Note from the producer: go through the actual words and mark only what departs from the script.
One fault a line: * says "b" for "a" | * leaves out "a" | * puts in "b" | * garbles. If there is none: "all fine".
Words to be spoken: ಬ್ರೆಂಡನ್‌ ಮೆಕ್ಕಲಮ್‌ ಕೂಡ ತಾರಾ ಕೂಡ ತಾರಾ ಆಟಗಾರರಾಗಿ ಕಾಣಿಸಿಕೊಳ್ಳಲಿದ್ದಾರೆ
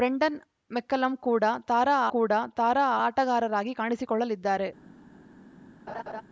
all fine